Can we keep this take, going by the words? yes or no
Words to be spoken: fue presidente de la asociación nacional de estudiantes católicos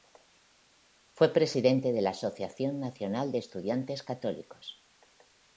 yes